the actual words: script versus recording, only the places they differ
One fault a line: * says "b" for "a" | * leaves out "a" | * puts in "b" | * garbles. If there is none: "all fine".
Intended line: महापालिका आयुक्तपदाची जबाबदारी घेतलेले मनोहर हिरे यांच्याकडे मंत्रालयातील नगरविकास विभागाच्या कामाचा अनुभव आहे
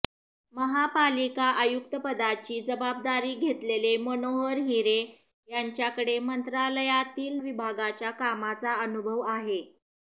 * leaves out "नगरविकास"